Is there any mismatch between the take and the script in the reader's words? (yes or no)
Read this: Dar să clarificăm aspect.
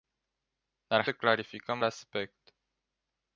no